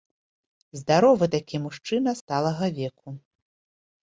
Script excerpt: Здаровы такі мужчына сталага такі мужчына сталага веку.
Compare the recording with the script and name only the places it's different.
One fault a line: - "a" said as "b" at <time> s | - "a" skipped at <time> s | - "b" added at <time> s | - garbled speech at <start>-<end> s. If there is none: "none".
- "такі мужчына сталага" skipped at 2.7 s